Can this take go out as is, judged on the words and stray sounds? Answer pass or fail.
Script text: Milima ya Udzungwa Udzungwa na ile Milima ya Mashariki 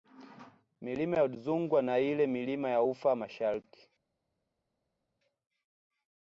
fail